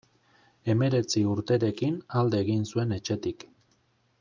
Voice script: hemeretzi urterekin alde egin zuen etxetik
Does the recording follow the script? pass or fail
pass